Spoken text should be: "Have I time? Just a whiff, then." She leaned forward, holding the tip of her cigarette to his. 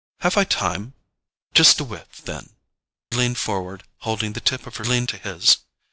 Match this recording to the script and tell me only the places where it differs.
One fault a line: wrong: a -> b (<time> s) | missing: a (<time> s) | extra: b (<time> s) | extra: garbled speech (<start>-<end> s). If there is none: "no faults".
missing: She (2.5 s)
wrong: cigarette -> leaned (4.8 s)